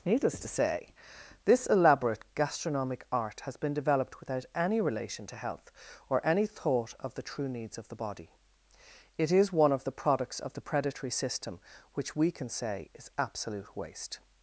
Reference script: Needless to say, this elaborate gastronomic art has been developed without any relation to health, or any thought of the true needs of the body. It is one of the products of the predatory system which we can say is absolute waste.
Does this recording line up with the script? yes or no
yes